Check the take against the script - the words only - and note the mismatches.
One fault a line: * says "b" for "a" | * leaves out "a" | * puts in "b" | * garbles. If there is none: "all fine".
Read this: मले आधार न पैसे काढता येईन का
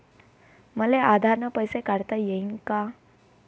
all fine